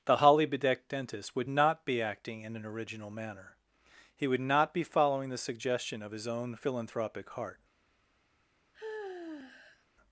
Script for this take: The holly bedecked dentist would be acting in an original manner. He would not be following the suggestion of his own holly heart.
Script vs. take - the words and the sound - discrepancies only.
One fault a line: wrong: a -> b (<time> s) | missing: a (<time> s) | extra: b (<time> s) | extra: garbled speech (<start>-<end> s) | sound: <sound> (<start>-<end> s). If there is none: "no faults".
extra: not (1.5 s)
wrong: holly -> philanthropic (6.5 s)
sound: sigh (8.7-9.9 s)